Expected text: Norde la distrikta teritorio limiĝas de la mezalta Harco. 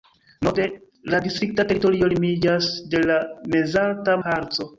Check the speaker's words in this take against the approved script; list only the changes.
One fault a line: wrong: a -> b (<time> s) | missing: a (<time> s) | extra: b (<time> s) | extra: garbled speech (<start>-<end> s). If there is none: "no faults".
no faults